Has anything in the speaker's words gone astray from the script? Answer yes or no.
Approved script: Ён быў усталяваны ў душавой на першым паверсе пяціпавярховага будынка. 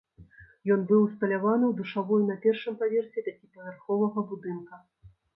no